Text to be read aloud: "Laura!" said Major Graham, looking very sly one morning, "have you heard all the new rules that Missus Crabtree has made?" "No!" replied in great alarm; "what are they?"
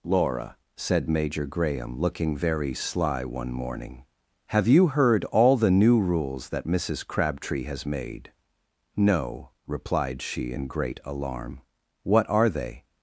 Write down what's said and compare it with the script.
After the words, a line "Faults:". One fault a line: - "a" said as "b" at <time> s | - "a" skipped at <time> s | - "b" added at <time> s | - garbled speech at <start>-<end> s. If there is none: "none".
"Laura!" said Major Graham, looking very sly one morning, "have you heard all the new rules that Missus Crabtree has made?" "No!" replied she in great alarm; "what are they?"
Faults:
- "she" added at 10.2 s